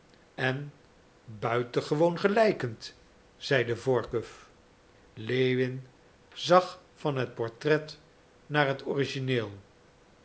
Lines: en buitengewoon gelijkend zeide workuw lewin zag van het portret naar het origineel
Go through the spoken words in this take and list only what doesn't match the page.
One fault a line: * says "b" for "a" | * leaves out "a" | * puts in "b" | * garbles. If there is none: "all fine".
all fine